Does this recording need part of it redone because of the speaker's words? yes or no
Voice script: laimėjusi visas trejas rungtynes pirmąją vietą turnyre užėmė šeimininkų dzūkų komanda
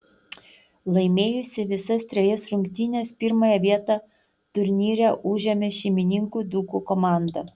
no